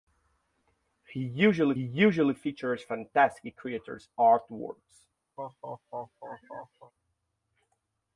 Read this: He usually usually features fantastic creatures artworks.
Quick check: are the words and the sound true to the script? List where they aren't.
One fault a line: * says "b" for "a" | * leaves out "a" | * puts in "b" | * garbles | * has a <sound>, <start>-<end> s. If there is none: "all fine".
* has a laugh, 5.4-6.9 s